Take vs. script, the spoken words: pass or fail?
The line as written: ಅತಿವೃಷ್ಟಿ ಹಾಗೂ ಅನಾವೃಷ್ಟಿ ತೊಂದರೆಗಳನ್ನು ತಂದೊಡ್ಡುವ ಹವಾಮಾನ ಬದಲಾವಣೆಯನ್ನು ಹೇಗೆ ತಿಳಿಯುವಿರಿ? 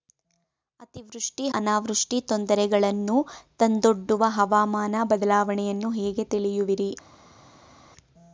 fail